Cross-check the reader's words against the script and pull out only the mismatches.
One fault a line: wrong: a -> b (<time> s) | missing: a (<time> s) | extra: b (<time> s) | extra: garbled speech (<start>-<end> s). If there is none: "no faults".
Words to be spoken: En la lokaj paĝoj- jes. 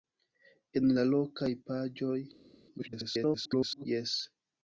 extra: garbled speech (2.8-3.9 s)